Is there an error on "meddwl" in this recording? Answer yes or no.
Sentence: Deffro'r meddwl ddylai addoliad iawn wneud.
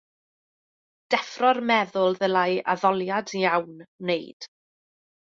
no